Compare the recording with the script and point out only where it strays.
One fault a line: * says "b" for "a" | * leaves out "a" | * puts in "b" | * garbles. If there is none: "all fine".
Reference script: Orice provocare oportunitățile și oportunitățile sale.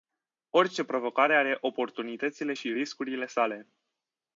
* puts in "are"
* says "riscurile" for "oportunitățile"